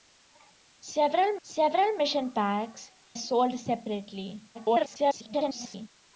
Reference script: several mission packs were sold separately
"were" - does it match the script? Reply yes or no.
no